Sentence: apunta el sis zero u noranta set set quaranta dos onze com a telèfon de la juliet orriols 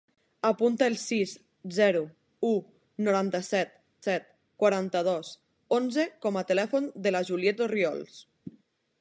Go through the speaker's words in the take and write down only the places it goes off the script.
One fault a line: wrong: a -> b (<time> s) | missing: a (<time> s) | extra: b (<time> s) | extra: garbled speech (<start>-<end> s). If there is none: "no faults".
no faults